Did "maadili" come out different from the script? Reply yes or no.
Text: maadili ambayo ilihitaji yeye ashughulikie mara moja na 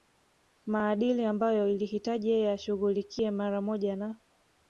no